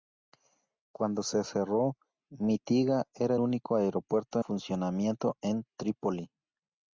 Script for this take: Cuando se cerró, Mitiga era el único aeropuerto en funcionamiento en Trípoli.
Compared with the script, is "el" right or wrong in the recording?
wrong